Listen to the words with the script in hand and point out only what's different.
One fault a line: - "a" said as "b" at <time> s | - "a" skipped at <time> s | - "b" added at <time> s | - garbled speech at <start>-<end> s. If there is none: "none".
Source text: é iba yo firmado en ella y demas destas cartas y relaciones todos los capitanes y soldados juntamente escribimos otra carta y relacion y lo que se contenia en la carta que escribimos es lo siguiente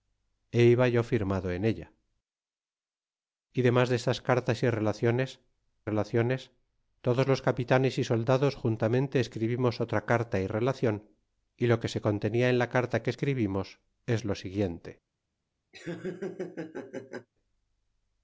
- "relaciones" added at 5.9 s